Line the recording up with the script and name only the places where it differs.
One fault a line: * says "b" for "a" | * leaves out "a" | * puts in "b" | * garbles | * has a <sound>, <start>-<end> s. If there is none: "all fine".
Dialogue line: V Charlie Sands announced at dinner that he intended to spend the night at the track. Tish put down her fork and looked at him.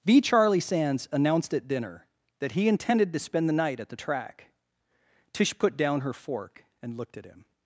all fine